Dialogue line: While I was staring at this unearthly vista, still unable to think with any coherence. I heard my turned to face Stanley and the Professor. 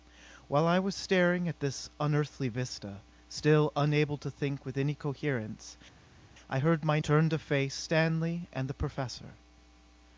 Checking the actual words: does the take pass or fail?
pass